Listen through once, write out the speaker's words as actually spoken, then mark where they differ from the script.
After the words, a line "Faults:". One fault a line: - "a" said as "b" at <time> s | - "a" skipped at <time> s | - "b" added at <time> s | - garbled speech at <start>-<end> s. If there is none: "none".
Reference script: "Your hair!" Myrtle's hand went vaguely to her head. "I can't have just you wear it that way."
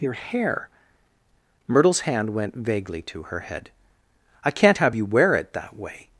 "Your hair!" Myrtle's hand went vaguely to her head. "I can't have you wear it that way."
Faults:
- "just" skipped at 5.0 s